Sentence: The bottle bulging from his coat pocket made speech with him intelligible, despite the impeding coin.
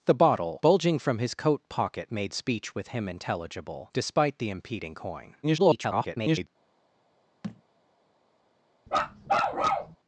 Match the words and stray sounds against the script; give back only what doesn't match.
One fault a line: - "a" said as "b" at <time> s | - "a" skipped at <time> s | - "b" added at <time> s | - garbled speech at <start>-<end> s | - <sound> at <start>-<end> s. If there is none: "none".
- garbled speech at 5.4-6.5 s
- thud at 7.4-7.6 s
- bark at 8.9-10.0 s